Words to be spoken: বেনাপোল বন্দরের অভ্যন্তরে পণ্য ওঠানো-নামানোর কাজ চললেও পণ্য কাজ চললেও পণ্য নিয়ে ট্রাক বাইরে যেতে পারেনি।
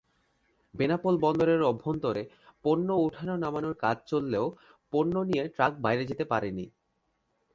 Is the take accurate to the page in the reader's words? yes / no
no